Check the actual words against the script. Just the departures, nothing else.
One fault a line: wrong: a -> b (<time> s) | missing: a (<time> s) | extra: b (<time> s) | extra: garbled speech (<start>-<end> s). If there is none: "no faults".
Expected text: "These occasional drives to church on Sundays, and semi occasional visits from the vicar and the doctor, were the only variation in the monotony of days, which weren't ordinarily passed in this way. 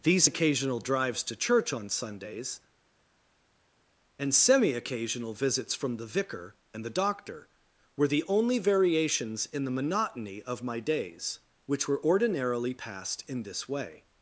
wrong: variation -> variations (8.6 s)
extra: my (10.6 s)
wrong: weren't -> were (11.9 s)